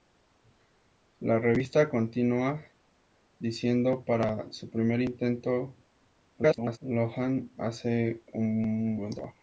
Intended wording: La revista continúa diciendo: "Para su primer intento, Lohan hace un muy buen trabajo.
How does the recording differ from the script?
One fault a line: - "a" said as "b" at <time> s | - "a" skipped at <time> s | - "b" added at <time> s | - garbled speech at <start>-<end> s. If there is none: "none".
- garbled speech at 6.4-6.8 s
- "muy" skipped at 9.0 s